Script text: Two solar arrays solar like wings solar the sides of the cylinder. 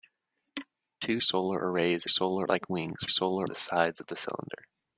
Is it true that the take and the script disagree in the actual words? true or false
false